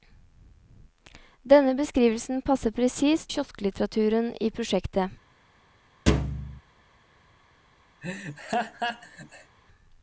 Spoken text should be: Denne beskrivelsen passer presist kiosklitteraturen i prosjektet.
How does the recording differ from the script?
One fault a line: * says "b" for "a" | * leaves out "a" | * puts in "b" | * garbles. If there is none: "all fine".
all fine